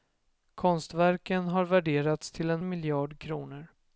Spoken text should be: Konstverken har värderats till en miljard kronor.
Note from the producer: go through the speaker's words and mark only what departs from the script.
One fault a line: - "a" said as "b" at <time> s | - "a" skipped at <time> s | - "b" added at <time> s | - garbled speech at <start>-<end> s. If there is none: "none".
none